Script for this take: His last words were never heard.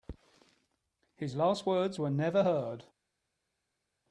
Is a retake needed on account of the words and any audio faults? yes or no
no